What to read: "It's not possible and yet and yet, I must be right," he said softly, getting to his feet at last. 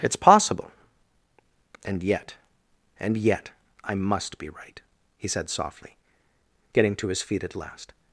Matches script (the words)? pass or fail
fail